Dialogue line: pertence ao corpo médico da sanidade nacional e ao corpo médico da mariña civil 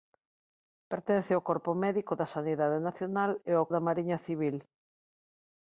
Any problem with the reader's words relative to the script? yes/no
yes